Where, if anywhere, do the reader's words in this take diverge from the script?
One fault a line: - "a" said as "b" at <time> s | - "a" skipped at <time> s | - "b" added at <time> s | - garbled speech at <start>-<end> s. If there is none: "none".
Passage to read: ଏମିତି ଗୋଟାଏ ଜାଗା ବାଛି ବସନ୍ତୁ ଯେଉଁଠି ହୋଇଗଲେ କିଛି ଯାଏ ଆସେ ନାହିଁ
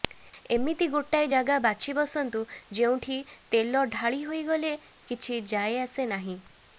- "ତେଲ ଢାଳି" added at 3.5 s